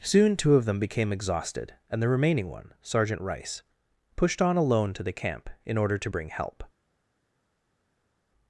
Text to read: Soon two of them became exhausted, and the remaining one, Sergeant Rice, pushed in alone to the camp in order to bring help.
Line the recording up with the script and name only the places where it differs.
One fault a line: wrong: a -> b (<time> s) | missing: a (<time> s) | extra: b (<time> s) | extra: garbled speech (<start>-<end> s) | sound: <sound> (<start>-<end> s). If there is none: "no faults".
wrong: in -> on (4.4 s)